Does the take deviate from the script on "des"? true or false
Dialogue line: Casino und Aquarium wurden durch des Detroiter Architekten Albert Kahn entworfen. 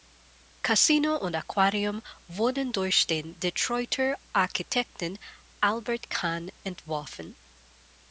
true